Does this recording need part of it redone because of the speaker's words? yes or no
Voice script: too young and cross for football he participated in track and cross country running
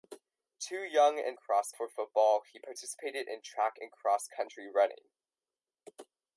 no